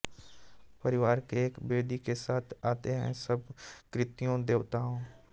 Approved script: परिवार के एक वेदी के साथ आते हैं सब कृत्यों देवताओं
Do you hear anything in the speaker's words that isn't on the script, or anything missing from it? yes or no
no